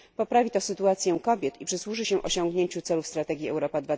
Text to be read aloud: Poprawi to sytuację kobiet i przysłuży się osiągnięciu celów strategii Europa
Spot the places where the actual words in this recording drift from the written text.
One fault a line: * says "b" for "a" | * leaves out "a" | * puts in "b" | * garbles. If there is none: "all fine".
all fine